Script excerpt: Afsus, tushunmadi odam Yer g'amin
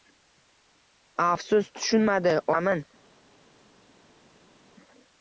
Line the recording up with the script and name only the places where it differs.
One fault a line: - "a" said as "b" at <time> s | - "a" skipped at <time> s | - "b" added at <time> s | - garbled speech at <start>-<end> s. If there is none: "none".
- "odam Yer" skipped at 2.4 s